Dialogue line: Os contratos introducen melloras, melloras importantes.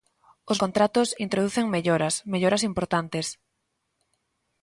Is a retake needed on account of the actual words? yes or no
no